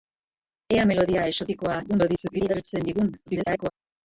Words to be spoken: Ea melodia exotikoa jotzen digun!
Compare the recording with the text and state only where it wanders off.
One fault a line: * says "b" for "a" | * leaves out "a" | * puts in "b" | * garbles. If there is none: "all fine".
* garbles
* garbles